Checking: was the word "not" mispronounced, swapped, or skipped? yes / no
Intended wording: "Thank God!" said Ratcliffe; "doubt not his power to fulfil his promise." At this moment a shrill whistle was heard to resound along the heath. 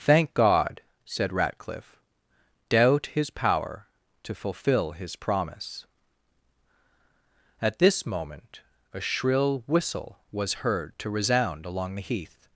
yes